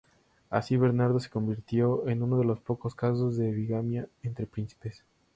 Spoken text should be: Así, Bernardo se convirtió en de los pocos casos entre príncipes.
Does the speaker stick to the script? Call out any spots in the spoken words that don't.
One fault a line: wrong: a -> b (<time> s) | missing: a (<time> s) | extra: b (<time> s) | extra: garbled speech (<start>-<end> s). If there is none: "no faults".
extra: uno (2.2 s)
extra: de bigamia (3.4 s)